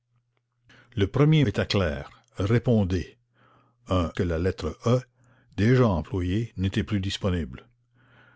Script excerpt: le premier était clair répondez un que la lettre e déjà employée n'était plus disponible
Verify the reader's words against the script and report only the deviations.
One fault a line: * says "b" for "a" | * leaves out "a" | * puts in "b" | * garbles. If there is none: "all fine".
all fine